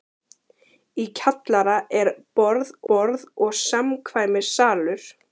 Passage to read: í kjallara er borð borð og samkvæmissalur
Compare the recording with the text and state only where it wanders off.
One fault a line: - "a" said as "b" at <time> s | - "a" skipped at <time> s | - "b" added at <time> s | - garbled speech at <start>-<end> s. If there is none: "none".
none